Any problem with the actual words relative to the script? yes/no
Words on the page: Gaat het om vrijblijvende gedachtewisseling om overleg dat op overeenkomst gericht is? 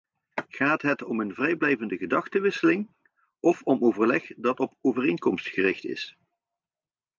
yes